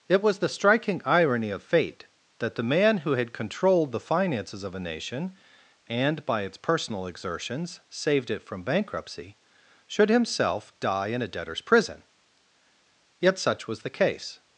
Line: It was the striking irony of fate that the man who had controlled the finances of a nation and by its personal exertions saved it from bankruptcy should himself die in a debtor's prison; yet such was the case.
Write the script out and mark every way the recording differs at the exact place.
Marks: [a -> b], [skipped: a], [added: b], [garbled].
It was the striking irony of fate that the man who had controlled the finances of a nation and by its personal exertions saved it from bankruptcy should himself die in a debtor's prison; yet such was the case.